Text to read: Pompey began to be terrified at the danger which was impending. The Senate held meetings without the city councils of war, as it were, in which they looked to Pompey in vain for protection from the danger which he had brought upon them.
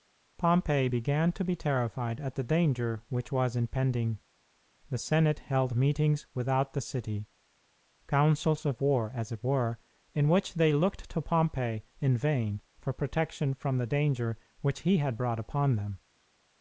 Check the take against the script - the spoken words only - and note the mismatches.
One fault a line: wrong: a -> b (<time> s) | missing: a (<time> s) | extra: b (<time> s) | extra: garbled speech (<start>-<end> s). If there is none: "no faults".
no faults